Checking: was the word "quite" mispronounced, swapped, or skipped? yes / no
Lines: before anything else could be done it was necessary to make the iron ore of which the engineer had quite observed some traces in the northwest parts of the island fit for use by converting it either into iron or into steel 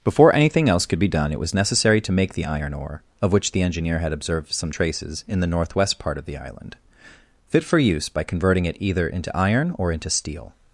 yes